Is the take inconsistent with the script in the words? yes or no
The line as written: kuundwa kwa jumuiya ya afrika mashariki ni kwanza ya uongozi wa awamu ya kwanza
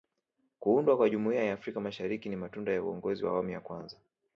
yes